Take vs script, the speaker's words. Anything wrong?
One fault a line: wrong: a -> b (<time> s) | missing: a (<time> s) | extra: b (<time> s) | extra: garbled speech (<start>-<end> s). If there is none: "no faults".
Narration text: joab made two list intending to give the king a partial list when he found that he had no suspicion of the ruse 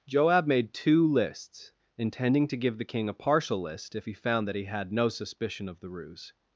wrong: list -> lists (1.1 s)
wrong: when -> if (3.9 s)